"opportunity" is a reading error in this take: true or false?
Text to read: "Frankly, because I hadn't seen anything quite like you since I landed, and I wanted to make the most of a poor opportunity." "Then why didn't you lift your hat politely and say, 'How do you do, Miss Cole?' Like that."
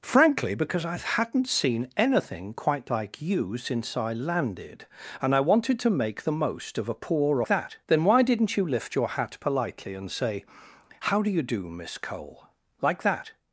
true